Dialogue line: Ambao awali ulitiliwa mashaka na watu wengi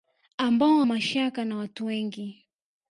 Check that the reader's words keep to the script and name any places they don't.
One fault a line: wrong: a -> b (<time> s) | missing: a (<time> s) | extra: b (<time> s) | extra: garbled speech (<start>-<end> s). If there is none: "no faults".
missing: awali ulitiliwa (0.8 s)